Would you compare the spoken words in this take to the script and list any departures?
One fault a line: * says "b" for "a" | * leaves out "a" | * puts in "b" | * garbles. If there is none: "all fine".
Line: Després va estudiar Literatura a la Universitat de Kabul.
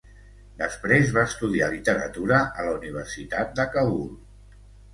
all fine